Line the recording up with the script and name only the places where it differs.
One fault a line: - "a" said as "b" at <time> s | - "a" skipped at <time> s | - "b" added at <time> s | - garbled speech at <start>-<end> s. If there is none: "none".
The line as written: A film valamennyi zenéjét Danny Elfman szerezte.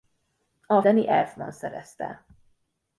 - "film valamennyi zenéjét" skipped at 0.8 s